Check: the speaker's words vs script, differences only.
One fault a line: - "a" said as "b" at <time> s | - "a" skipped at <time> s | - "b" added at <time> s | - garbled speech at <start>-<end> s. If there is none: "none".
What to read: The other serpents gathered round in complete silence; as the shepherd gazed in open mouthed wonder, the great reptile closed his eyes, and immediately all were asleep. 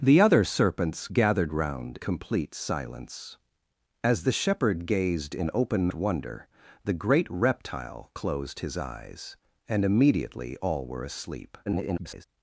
- "in" skipped at 2.0 s
- "mouthed" skipped at 5.9 s
- garbled speech at 11.7-12.3 s